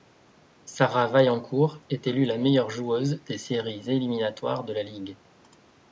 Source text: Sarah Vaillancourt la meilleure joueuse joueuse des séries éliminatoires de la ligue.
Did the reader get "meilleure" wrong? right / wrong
right